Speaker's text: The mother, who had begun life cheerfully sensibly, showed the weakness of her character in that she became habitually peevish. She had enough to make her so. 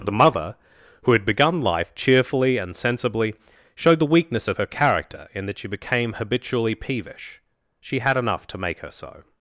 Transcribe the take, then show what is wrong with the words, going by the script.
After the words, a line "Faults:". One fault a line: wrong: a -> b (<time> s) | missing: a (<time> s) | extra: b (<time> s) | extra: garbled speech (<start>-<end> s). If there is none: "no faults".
The mother, who had begun life cheerfully and sensibly, showed the weakness of her character in that she became habitually peevish. She had enough to make her so.
Faults:
extra: and (2.6 s)